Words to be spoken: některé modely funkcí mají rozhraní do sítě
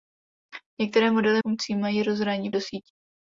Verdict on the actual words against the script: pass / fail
pass